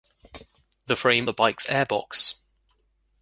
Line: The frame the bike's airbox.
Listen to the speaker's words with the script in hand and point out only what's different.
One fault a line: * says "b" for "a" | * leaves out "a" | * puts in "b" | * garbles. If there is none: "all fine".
all fine